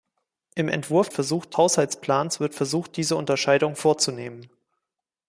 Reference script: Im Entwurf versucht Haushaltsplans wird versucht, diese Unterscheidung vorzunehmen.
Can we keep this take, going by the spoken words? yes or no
yes